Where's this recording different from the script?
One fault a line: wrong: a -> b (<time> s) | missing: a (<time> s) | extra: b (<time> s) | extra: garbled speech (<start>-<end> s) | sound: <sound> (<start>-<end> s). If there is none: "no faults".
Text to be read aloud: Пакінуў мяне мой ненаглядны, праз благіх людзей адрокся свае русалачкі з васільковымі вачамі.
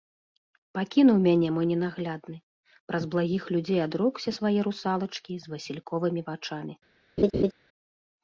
sound: laugh (7.2-7.5 s)